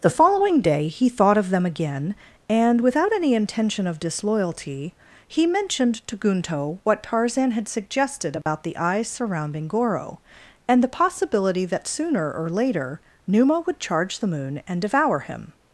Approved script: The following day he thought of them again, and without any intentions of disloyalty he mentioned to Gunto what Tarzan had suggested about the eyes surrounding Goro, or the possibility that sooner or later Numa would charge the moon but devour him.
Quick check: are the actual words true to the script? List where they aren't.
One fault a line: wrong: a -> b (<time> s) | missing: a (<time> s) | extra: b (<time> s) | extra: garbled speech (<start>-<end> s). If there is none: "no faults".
wrong: intentions -> intention (3.3 s)
wrong: or -> and (10.7 s)
wrong: but -> and (14.7 s)